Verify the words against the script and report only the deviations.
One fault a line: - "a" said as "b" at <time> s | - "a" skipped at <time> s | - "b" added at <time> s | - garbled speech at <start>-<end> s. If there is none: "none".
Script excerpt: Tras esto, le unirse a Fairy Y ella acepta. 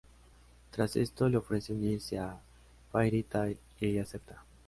- "ofrece" added at 1.4 s
- "Tail" added at 3.2 s